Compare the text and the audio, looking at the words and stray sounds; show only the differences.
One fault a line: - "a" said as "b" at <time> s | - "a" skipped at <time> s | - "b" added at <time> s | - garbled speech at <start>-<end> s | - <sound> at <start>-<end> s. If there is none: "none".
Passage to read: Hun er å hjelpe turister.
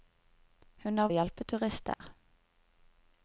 - dropout at 1.9-2.0 s